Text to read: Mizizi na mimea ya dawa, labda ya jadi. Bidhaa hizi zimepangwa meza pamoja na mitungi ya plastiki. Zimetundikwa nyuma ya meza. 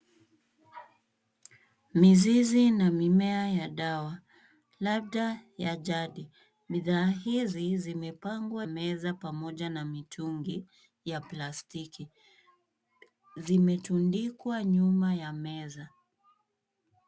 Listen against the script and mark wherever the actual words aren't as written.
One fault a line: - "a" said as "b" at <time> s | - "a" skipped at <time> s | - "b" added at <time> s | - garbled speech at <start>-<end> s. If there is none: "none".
none